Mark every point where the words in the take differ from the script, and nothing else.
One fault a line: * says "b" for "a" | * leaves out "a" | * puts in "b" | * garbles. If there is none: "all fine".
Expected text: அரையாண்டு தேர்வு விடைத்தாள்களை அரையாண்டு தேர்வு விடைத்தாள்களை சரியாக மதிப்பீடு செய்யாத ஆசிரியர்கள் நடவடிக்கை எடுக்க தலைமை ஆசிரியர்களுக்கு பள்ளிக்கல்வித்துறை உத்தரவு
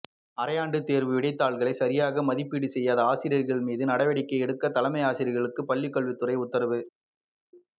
* leaves out "அரையாண்டு தேர்வு விடைத்தாள்களை"
* puts in "மீது"